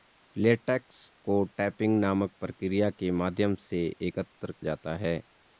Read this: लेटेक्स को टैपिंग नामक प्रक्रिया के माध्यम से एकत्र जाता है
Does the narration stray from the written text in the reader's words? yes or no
no